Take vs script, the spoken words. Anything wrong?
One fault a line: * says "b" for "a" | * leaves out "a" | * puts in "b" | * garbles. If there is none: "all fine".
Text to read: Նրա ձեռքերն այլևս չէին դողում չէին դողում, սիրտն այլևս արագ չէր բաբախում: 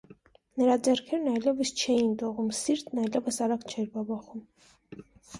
* leaves out "չէին դողում"